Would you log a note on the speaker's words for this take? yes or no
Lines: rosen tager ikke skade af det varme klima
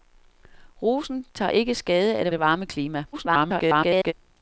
yes